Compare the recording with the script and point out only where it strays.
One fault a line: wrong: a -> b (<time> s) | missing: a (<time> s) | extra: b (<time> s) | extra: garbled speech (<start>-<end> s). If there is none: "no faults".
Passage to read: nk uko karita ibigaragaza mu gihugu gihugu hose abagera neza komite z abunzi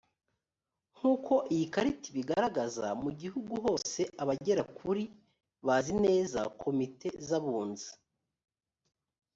extra: iyi (1.5 s)
missing: gihugu (3.5 s)
extra: kuri bazi (4.8 s)